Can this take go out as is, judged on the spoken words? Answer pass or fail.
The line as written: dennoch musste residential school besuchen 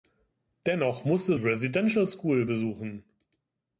pass